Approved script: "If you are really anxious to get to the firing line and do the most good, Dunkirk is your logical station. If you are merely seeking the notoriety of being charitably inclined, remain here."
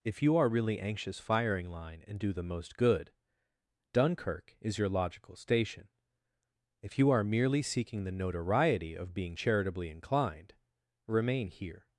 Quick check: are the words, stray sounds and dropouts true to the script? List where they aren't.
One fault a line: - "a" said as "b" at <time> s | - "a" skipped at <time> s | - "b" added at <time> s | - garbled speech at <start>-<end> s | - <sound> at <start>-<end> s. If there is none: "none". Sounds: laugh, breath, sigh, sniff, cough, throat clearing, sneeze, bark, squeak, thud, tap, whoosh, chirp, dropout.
- "to get to the" skipped at 1.2 s